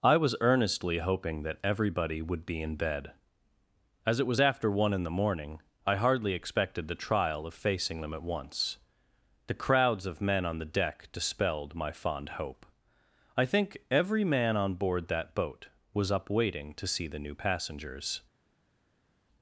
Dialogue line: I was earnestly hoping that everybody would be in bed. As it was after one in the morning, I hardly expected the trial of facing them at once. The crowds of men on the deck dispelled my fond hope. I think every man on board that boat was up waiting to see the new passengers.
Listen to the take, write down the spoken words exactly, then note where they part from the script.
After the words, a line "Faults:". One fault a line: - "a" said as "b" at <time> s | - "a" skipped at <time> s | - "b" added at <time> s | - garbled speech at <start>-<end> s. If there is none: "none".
I was earnestly hoping that everybody would be in bed. As it was after one in the morning, I hardly expected the trial of facing them at once. The crowds of men on the deck dispelled my fond hope. I think every man on board that boat was up waiting to see the new passengers.
Faults:
none